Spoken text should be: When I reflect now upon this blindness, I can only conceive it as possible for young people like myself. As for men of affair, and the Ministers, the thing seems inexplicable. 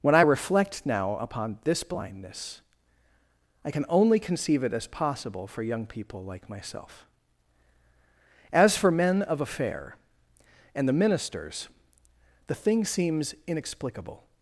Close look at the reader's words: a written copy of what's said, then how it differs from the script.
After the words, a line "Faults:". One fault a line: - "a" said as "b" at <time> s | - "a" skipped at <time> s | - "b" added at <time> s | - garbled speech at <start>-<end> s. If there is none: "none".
When I reflect now upon this blindness, I can only conceive it as possible for young people like myself. As for men of affair, and the Ministers, the thing seems inexplicable.
Faults:
none